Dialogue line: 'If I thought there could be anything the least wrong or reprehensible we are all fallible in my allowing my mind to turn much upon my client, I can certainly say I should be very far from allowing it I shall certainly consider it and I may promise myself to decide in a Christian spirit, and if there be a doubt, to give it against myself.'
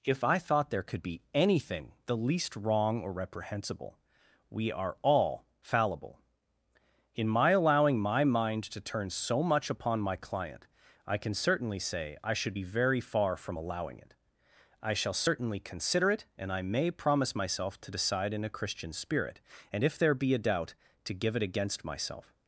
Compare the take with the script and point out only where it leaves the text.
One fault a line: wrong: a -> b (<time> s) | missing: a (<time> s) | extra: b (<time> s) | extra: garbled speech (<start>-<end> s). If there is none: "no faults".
extra: so (9.1 s)